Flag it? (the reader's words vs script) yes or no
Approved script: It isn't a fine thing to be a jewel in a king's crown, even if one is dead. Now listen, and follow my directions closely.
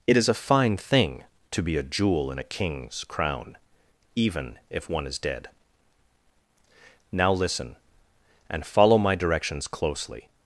yes